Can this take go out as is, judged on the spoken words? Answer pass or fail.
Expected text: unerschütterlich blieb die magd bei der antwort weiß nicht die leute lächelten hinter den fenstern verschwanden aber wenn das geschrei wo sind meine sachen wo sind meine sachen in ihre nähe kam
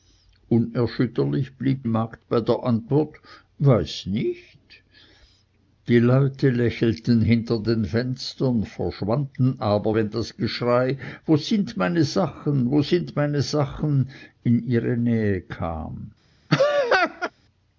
fail